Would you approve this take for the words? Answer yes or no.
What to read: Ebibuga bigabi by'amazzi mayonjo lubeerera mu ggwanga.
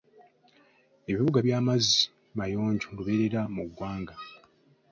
no